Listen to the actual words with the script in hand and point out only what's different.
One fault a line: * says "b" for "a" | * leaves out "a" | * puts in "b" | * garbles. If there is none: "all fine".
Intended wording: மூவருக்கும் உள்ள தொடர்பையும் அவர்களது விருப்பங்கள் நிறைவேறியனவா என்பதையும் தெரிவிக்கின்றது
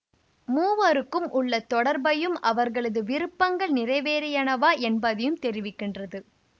all fine